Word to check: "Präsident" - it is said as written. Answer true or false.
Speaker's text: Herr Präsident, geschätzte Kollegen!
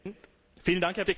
false